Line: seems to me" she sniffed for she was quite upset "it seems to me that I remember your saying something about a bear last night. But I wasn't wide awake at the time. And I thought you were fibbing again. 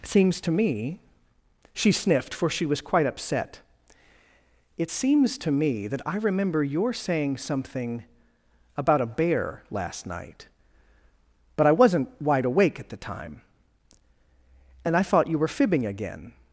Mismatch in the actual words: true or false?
false